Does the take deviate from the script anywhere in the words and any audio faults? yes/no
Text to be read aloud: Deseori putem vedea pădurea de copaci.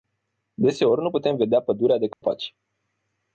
yes